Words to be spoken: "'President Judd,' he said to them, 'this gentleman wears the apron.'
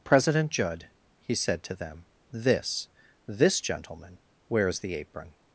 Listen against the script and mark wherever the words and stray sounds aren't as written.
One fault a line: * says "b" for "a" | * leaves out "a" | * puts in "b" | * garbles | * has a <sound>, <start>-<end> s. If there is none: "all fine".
* puts in "this"